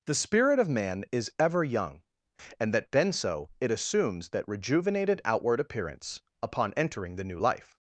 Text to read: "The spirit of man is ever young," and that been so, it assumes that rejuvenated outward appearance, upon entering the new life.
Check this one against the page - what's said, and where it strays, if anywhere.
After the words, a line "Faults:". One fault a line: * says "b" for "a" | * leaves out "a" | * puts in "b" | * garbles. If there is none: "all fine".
"The spirit of man is ever young," and that been so, it assumes that rejuvenated outward appearance, upon entering the new life.
Faults:
all fine